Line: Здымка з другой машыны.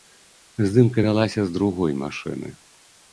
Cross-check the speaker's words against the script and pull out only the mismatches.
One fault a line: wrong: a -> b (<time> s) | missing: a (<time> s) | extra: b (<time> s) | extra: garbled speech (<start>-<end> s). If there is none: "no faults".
extra: вялася (1.0 s)